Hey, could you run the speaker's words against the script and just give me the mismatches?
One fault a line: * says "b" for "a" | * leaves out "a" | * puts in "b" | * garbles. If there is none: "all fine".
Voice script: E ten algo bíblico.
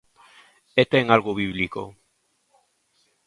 all fine